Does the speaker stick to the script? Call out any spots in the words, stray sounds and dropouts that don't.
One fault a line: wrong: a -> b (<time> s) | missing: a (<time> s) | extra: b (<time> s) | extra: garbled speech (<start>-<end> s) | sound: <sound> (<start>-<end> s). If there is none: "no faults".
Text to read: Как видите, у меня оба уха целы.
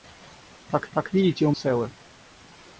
extra: как (0.9 s)
missing: меня оба уха (1.5 s)